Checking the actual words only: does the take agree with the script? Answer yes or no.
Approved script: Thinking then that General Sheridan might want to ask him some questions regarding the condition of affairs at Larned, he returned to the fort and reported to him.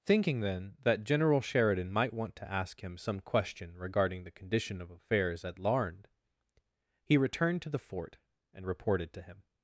no